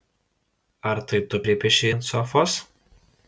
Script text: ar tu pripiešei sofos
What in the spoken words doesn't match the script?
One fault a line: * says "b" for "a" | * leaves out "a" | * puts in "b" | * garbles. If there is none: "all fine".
* puts in "tai"
* puts in "ant"